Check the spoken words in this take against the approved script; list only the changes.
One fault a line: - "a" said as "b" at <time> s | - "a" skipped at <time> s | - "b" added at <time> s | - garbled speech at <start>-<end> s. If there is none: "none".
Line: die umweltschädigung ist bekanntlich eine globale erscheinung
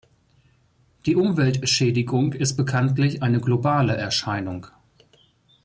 none